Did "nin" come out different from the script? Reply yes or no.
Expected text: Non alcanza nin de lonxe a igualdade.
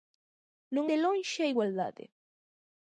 yes